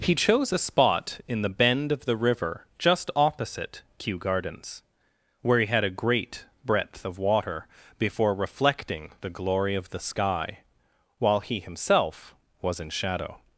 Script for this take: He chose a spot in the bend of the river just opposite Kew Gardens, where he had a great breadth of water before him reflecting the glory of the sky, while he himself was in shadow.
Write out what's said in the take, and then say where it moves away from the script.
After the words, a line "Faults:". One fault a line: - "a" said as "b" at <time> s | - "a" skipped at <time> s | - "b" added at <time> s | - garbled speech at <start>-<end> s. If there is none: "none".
He chose a spot in the bend of the river just opposite Kew Gardens, where he had a great breadth of water before reflecting the glory of the sky, while he himself was in shadow.
Faults:
- "him" skipped at 8.3 s